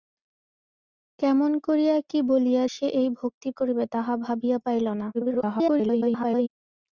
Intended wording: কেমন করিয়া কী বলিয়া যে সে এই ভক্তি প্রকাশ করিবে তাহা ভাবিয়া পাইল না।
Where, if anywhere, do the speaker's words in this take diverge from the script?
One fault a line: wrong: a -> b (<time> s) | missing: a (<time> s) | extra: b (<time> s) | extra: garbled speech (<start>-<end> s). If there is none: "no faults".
missing: যে (2.6 s)
missing: প্রকাশ (3.5 s)
extra: garbled speech (5.1-6.5 s)